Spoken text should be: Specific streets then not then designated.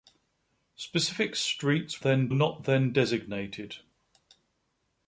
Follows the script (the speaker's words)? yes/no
yes